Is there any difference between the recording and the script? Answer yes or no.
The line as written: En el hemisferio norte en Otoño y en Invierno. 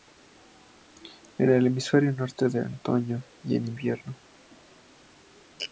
no